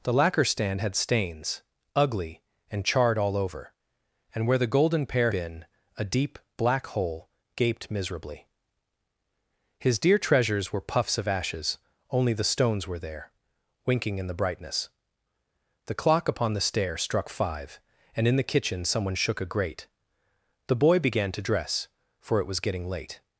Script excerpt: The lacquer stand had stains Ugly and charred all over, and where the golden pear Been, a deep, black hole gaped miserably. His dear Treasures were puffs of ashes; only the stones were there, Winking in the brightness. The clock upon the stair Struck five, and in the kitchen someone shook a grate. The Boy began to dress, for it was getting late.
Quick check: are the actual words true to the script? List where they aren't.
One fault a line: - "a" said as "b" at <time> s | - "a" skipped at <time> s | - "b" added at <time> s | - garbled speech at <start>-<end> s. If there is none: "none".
none